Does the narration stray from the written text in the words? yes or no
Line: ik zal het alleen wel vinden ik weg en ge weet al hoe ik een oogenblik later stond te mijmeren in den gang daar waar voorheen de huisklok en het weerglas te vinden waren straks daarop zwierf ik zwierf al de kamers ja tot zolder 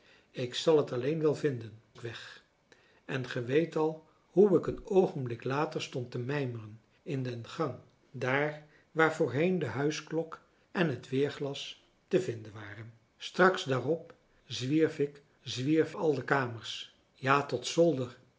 no